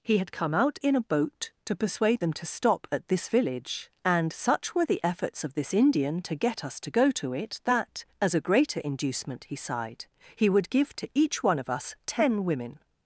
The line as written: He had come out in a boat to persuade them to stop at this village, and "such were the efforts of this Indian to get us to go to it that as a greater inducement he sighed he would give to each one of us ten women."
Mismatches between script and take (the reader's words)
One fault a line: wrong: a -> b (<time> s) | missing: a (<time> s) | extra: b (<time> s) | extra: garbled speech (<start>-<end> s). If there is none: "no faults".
no faults